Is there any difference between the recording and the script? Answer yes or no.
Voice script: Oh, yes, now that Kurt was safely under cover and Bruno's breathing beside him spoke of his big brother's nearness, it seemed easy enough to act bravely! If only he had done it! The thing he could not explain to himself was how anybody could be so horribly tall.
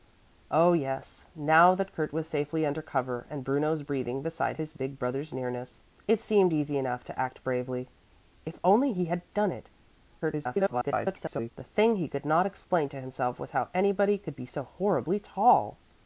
yes